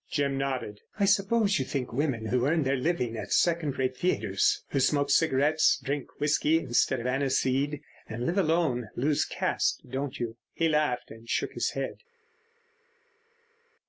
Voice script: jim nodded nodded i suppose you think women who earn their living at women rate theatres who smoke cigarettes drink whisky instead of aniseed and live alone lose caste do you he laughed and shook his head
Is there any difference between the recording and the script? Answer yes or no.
yes